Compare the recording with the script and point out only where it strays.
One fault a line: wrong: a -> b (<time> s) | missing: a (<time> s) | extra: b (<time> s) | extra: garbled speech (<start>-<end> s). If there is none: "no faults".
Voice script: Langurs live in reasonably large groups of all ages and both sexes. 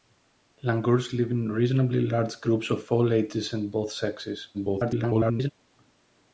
extra: garbled speech (4.5-5.5 s)